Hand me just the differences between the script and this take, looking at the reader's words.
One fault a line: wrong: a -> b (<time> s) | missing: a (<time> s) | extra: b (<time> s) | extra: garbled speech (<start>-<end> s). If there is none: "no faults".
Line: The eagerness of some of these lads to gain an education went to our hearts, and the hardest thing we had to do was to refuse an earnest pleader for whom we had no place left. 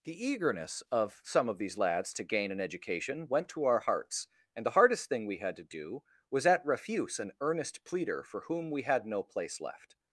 wrong: to -> at (6.4 s)